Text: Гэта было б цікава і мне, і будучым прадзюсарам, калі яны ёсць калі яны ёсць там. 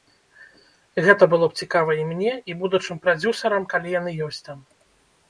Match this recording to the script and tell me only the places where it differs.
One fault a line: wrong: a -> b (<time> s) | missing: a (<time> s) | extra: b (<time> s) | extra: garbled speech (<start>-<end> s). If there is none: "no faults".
missing: калі яны ёсць (4.4 s)